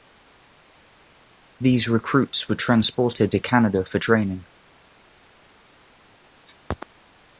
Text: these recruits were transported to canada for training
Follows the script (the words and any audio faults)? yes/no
yes